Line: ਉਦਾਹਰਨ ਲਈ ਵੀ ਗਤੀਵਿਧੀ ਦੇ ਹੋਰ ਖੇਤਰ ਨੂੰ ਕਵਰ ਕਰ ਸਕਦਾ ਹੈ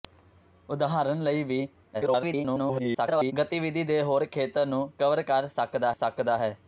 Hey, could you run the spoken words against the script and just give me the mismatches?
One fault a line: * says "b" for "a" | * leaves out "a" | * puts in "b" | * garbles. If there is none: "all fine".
* garbles
* puts in "ਸਕਦਾ"